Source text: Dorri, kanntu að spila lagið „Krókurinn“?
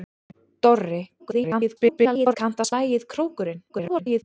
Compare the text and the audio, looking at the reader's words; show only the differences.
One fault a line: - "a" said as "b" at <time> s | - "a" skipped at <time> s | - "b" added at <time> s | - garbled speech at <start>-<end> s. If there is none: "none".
- garbled speech at 1.2-2.4 s
- "spila" skipped at 2.7 s
- garbled speech at 3.7-4.2 s